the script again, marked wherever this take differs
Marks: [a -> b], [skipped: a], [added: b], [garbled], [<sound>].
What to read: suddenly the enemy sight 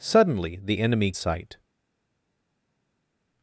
suddenly the enemy sight